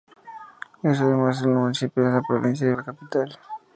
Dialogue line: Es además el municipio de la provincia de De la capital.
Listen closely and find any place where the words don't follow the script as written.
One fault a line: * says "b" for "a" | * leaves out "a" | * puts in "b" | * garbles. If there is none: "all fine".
all fine